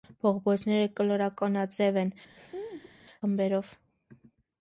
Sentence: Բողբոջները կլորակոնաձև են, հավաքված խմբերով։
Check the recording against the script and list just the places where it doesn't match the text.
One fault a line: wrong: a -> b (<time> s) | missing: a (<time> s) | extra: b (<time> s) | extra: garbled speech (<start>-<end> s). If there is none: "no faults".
missing: հավաքված (2.1 s)